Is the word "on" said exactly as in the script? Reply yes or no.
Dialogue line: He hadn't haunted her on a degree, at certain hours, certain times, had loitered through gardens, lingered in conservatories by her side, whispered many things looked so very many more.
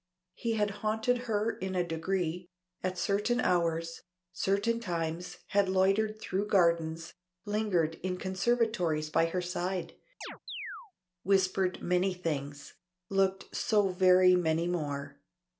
no